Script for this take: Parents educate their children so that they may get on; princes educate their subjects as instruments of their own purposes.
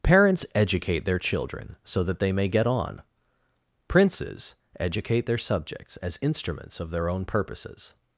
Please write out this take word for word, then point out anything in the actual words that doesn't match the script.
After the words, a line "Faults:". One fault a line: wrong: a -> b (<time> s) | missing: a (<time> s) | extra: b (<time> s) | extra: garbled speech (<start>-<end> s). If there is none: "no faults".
Parents educate their children so that they may get on; princes educate their subjects as instruments of their own purposes.
Faults:
no faults